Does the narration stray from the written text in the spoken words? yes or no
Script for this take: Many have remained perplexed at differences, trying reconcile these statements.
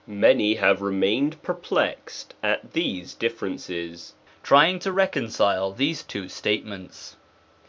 yes